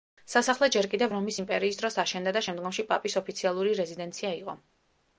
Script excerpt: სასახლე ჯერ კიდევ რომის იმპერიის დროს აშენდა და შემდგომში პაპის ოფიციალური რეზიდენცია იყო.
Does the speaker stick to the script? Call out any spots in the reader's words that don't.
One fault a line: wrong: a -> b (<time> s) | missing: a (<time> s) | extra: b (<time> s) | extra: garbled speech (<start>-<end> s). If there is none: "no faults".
no faults